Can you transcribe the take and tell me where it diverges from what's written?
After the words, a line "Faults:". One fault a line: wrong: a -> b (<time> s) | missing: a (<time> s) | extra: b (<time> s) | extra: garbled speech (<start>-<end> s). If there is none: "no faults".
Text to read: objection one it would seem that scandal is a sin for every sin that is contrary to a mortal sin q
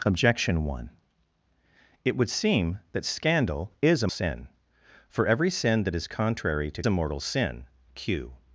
objection one it would seem that scandal is a sin for every sin that is contrary to a mortal sin q
Faults:
no faults